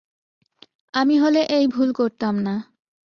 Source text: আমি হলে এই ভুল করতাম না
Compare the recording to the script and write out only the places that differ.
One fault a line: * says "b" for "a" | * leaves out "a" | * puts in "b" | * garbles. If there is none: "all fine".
all fine